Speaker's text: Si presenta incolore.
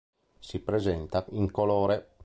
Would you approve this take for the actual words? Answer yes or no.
yes